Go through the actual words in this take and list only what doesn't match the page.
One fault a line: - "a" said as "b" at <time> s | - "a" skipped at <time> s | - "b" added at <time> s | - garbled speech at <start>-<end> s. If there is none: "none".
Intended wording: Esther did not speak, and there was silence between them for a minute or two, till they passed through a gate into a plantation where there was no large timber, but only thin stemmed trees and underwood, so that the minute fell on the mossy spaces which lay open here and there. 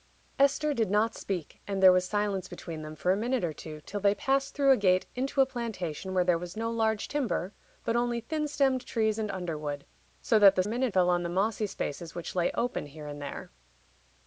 none